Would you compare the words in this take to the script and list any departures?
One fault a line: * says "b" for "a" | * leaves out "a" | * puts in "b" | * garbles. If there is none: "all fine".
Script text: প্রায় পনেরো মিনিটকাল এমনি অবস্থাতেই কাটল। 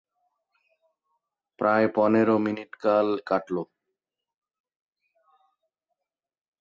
* leaves out "এমনি অবস্থাতেই"